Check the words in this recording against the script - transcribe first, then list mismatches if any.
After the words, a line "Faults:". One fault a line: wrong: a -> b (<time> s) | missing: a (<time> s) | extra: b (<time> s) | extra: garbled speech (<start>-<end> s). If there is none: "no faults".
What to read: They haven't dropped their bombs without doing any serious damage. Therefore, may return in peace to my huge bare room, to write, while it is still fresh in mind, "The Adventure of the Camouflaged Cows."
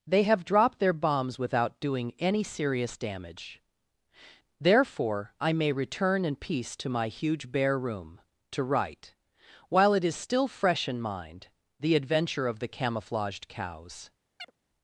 They have dropped their bombs without doing any serious damage. Therefore, I may return in peace to my huge bare room, to write, while it is still fresh in mind, "The Adventure of the Camouflaged Cows."
Faults:
wrong: haven't -> have (0.2 s)
extra: I (5.4 s)